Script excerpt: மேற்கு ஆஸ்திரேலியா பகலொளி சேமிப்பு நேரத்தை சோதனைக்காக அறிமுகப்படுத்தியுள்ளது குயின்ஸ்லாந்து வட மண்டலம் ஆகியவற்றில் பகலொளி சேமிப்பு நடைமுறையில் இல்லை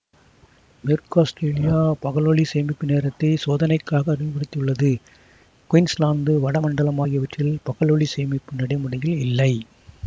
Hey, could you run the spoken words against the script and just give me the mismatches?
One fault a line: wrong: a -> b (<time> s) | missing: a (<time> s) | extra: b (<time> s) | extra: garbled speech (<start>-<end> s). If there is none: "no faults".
no faults